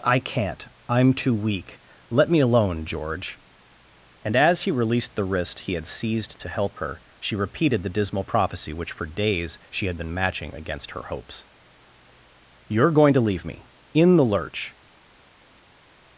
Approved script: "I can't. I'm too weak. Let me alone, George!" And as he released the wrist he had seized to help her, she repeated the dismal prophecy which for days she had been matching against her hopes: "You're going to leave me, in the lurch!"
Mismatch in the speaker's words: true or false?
false